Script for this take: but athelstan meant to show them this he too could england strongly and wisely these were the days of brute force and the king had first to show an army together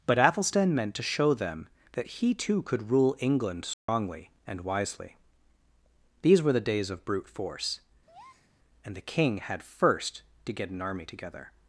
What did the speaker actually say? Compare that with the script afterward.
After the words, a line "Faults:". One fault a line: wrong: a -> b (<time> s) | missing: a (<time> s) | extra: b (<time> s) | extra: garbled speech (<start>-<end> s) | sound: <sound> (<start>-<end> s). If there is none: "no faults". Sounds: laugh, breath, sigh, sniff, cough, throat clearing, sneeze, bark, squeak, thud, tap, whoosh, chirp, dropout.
but athelstan meant to show them that he too could rule england strongly and wisely these were the days of brute force and the king had first to get an army together
Faults:
wrong: this -> that (1.9 s)
extra: rule (2.9 s)
sound: dropout (3.7-3.9 s)
sound: breath (8.1-8.5 s)
wrong: show -> get (10.5 s)